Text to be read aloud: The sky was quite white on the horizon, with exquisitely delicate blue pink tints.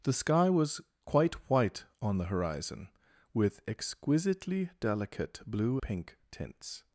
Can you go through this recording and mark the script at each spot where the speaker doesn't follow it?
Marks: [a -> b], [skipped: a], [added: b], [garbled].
The sky was quite white on the horizon, with exquisitely delicate blue pink tints.